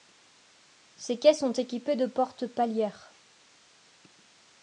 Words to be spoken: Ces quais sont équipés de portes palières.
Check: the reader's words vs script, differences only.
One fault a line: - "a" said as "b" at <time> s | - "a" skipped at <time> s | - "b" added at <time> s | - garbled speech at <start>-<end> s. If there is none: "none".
none